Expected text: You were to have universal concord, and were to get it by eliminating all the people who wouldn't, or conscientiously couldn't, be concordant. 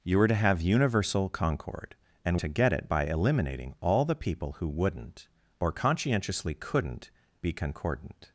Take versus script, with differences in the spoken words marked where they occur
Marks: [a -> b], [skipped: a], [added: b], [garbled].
You were to have universal concord, and [skipped: were] to get it by eliminating all the people who wouldn't, or conscientiously couldn't, be concordant.